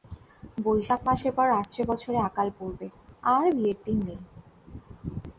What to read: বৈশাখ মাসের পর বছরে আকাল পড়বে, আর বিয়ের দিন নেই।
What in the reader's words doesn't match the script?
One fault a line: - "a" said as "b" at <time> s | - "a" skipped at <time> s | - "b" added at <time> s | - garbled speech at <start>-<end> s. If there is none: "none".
- "আসছে" added at 1.5 s